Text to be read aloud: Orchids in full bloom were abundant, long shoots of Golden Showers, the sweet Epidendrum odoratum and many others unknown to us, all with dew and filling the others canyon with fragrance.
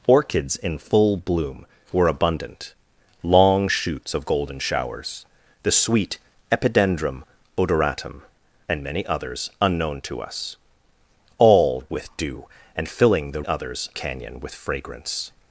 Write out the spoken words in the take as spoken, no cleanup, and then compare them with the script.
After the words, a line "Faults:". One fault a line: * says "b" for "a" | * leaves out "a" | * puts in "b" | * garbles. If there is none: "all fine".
Orchids in full bloom were abundant, long shoots of Golden Showers, the sweet Epidendrum odoratum and many others unknown to us, all with dew and filling the others canyon with fragrance.
Faults:
all fine